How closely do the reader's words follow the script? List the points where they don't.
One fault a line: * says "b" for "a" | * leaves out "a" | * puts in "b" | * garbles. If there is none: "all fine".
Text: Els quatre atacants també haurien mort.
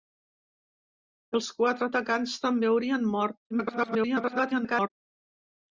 * garbles